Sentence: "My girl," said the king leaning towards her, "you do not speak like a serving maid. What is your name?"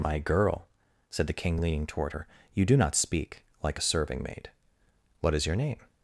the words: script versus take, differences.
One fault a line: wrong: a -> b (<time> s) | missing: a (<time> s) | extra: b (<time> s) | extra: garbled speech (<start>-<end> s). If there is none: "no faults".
wrong: towards -> toward (1.9 s)